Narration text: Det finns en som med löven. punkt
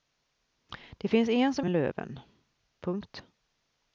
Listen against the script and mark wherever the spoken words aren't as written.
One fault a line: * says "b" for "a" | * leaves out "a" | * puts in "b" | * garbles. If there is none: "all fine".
all fine